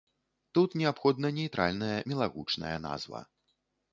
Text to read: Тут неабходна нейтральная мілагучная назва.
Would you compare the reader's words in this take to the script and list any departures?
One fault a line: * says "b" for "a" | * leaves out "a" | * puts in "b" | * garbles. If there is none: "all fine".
all fine